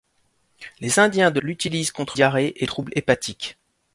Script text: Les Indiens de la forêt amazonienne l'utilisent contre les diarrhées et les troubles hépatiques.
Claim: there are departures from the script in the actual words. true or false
true